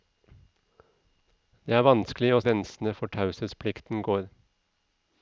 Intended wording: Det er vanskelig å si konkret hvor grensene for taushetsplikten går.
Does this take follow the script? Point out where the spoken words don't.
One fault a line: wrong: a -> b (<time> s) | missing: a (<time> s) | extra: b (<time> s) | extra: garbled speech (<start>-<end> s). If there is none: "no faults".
missing: si konkret hvor (2.4 s)